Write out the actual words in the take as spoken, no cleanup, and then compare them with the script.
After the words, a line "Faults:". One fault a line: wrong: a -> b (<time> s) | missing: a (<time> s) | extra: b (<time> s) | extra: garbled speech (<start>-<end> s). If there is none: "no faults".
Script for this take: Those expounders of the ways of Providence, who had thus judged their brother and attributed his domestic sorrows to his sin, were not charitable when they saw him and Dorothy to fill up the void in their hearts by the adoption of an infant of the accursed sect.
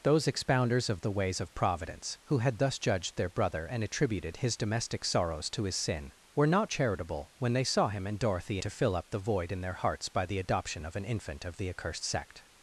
Those expounders of the ways of Providence, who had thus judged their brother and attributed his domestic sorrows to his sin, were not charitable when they saw him and Dorothy to fill up the void in their hearts by the adoption of an infant of the accursed sect.
Faults:
no faults